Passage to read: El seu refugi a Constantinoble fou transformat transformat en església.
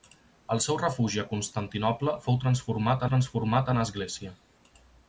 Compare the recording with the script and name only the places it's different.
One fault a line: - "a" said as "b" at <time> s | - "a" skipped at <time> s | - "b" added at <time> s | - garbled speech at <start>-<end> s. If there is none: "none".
none